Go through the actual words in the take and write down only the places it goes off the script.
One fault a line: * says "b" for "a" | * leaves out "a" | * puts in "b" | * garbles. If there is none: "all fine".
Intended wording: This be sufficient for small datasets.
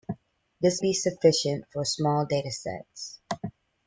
all fine